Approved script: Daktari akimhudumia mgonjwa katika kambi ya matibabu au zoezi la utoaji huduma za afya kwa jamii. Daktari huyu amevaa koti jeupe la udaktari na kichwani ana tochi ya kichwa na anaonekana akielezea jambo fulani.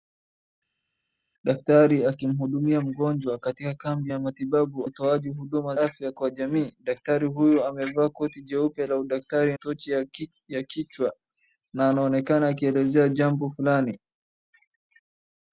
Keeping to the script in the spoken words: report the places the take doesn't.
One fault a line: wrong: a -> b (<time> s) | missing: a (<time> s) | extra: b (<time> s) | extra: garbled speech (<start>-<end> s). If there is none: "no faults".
missing: au zoezi la (4.8 s)
missing: za (5.8 s)
missing: na kichwani ana (9.6 s)